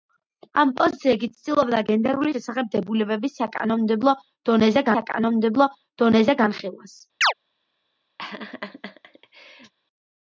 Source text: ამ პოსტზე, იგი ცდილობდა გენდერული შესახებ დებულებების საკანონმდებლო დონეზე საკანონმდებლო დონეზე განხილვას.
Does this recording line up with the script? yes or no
yes